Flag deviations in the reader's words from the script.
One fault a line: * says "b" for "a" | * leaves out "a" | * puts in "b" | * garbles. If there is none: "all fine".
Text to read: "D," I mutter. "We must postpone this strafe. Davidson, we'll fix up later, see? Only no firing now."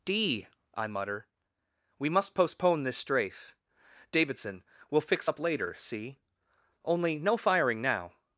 all fine